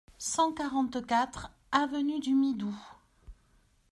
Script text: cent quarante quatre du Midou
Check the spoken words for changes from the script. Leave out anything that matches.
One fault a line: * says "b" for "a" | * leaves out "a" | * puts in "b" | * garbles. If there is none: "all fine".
* puts in "avenue"